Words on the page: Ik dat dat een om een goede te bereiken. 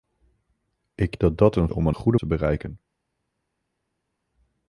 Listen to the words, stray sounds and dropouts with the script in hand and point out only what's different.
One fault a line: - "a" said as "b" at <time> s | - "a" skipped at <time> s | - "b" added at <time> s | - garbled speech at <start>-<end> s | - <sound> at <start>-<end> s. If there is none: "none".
none